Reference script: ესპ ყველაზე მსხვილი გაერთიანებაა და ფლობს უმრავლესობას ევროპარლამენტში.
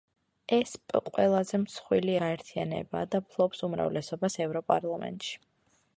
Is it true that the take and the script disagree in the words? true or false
false